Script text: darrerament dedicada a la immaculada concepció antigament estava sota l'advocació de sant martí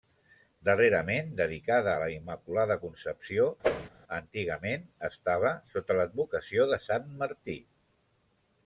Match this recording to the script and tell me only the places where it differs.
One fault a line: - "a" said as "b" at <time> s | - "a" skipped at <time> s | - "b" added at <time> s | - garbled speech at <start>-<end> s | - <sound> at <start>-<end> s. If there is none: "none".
- whoosh at 3.6-3.9 s